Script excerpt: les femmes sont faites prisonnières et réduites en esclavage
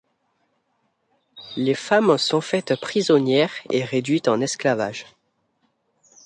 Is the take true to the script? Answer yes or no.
yes